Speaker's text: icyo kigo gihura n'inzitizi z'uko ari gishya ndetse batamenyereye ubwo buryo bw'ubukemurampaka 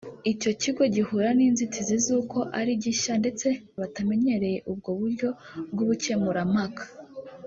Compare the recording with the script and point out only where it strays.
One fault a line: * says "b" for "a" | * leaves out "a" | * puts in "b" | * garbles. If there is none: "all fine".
all fine